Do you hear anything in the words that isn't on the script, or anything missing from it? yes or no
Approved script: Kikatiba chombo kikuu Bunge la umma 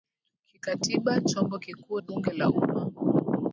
no